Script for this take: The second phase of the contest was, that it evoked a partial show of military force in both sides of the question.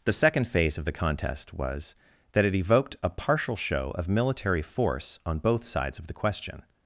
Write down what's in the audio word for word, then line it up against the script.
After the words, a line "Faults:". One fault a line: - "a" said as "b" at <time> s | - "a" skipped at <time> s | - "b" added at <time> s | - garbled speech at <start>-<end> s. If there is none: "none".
The second phase of the contest was, that it evoked a partial show of military force on both sides of the question.
Faults:
- "in" said as "on" at 5.2 s